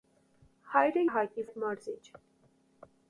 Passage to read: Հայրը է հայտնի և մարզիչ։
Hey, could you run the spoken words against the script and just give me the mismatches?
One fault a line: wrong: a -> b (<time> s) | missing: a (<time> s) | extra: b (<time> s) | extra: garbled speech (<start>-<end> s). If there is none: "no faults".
no faults